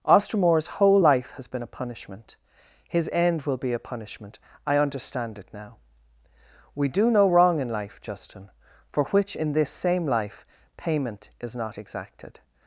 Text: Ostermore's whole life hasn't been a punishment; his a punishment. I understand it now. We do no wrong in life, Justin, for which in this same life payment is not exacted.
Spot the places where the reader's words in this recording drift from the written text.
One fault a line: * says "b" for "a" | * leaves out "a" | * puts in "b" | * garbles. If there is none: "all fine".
* says "has" for "hasn't"
* puts in "end will be"